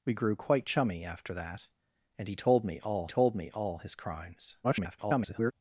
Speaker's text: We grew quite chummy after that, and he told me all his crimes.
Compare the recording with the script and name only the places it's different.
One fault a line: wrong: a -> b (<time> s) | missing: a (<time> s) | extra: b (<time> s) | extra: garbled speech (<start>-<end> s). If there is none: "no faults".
extra: told me all (3.1 s)
extra: garbled speech (4.6-5.5 s)